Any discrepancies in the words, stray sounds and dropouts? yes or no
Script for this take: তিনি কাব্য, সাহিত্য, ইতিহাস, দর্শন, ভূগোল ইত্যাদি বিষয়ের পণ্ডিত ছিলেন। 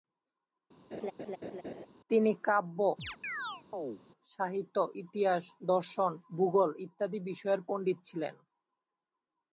yes